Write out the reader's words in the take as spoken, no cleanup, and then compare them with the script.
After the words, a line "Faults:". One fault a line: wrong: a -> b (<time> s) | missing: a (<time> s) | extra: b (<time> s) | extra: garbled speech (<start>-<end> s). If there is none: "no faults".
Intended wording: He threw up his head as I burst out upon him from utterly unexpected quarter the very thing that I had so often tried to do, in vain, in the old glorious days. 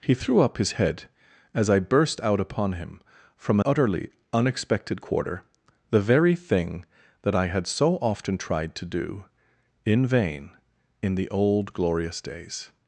He threw up his head as I burst out upon him from utterly unexpected quarter the very thing that I had so often tried to do, in vain, in the old glorious days.
Faults:
no faults